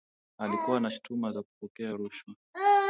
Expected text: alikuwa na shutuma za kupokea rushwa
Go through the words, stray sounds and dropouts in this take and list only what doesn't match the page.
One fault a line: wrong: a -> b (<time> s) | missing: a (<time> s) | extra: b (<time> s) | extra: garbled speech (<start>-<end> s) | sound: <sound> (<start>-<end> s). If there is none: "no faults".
no faults